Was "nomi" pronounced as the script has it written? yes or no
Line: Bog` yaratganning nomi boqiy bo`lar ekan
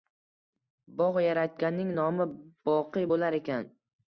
yes